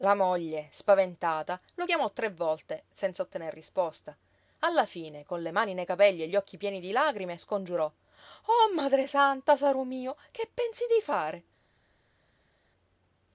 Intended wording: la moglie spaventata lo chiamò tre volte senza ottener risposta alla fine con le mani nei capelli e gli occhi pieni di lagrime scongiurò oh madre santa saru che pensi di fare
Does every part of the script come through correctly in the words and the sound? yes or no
no